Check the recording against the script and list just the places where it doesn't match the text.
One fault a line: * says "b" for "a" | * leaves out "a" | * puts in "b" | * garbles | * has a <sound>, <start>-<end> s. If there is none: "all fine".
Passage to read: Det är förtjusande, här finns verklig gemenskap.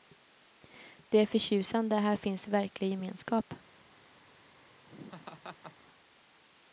* has a laugh, 4.9-5.8 s